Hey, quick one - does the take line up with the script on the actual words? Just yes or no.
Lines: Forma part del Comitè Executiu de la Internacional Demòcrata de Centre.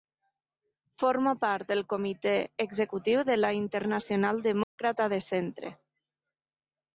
yes